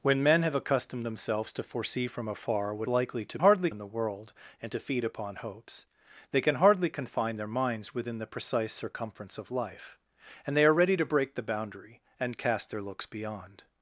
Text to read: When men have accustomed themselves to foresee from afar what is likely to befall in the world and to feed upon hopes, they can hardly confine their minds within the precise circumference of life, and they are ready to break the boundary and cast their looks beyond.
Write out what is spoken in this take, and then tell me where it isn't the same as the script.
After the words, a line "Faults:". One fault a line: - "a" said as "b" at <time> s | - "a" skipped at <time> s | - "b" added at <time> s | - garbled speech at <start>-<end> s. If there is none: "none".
When men have accustomed themselves to foresee from afar what likely to hardly in the world and to feed upon hopes, they can hardly confine their minds within the precise circumference of life, and they are ready to break the boundary and cast their looks beyond.
Faults:
- "is" skipped at 2.9 s
- "befall" said as "hardly" at 3.4 s